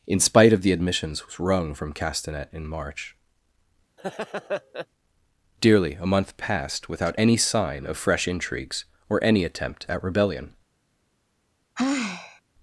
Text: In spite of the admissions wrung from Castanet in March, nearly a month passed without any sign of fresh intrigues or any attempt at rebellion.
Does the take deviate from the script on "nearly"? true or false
true